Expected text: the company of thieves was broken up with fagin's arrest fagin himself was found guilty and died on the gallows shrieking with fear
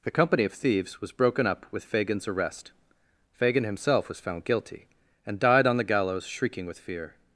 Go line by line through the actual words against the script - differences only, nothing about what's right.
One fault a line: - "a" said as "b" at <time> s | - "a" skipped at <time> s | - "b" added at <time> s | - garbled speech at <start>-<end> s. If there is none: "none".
none